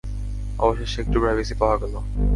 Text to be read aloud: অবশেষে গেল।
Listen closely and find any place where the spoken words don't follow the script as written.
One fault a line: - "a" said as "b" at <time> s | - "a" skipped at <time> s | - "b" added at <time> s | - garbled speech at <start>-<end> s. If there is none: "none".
- "একটু প্রাইভেসি পাওয়া" added at 1.0 s